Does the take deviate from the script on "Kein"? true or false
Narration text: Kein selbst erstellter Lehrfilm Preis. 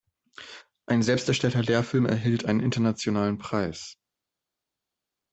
true